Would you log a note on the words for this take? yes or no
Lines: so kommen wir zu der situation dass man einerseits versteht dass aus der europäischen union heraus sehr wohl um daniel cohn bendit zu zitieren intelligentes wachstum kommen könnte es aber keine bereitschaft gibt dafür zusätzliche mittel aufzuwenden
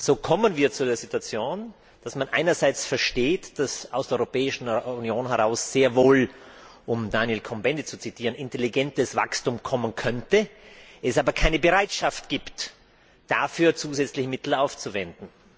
no